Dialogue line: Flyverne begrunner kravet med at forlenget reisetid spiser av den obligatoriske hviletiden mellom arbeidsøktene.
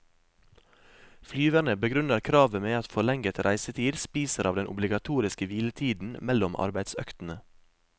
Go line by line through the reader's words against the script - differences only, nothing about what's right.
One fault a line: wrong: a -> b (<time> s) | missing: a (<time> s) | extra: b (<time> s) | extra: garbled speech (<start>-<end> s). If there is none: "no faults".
no faults